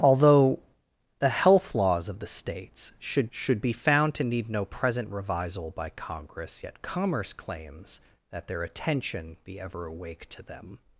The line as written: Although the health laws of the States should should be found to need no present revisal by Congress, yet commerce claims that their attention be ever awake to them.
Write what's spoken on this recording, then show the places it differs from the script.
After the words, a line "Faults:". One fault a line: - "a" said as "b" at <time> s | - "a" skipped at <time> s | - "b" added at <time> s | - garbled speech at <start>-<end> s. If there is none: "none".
Although the health laws of the States should should be found to need no present revisal by Congress, yet commerce claims that their attention be ever awake to them.
Faults:
none